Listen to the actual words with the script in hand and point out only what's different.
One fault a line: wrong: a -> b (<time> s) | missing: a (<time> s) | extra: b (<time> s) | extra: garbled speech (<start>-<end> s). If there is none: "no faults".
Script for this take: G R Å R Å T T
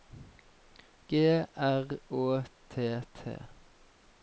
missing: R Å (2.4 s)